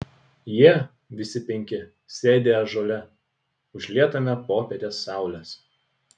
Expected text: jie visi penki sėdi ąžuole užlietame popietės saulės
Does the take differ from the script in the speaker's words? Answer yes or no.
no